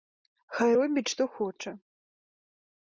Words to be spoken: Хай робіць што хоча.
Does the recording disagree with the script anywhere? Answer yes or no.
no